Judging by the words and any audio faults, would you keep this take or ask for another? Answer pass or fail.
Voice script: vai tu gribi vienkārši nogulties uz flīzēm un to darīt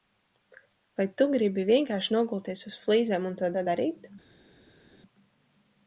fail